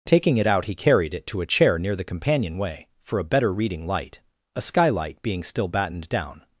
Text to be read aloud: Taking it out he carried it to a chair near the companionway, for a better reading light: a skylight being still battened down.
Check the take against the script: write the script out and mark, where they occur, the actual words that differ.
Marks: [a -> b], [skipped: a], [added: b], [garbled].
Taking it out he carried it to a chair near the companionway, for a better reading light: a skylight being still battened down.